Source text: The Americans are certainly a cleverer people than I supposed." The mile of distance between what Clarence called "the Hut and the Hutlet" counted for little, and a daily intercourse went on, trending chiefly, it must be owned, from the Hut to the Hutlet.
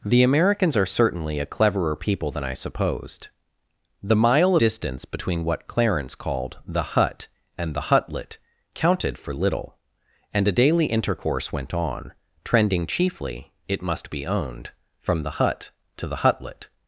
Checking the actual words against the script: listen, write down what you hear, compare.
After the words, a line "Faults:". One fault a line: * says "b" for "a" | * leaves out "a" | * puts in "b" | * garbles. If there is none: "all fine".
The Americans are certainly a cleverer people than I supposed." The mile distance between what Clarence called "the Hut and the Hutlet" counted for little, and a daily intercourse went on, trending chiefly, it must be owned, from the Hut to the Hutlet.
Faults:
* leaves out "of"